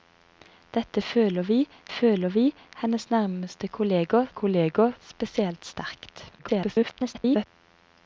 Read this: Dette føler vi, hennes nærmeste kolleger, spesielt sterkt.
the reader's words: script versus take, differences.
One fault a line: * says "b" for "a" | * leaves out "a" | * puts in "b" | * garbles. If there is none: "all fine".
* puts in "føler vi"
* puts in "kolleger"
* garbles